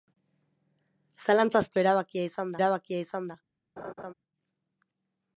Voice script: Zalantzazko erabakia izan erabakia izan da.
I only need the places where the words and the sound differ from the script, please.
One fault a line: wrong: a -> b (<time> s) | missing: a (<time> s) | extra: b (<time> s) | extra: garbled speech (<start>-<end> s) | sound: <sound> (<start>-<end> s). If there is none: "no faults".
sound: laugh (3.8-4.1 s)